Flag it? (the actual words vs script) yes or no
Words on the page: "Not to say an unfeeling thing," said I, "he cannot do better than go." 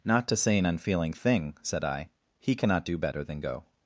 no